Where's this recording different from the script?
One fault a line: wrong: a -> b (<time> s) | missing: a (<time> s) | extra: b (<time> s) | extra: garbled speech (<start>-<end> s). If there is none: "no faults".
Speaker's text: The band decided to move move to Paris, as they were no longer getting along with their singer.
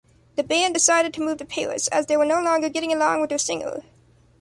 missing: move (1.4 s)